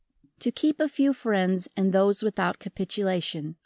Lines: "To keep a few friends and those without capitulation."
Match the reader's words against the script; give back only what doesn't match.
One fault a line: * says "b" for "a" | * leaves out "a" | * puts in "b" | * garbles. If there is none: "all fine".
all fine